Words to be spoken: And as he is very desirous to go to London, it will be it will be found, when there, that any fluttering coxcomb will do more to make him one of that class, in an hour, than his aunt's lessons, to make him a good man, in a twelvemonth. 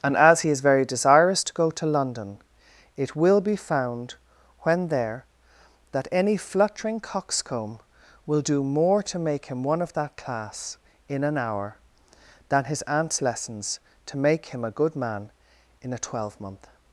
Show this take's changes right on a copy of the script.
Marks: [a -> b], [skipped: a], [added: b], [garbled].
And as he is very desirous to go to London, it will be [skipped: it will be] found, when there, that any fluttering coxcomb will do more to make him one of that class, in an hour, than his aunt's lessons, to make him a good man, in a twelvemonth.